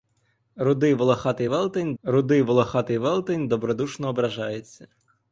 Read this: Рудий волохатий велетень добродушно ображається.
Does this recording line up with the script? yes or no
no